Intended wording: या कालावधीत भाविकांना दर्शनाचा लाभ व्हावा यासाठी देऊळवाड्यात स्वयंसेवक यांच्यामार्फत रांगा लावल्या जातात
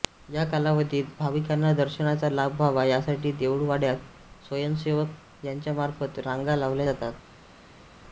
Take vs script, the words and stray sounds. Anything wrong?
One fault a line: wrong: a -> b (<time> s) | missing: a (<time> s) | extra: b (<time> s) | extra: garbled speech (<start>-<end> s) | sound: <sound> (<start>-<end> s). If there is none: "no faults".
no faults